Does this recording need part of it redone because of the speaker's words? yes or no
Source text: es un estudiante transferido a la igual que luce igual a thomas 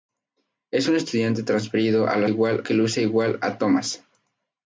no